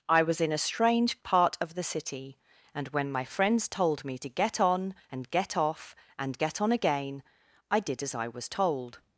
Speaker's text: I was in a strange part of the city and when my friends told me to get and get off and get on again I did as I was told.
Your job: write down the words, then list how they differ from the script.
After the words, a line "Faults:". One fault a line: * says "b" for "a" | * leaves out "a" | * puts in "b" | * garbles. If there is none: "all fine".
I was in a strange part of the city and when my friends told me to get on and get off and get on again I did as I was told.
Faults:
* puts in "on"